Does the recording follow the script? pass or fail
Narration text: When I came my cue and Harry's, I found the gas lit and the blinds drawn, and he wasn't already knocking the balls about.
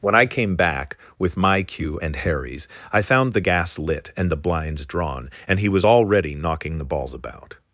fail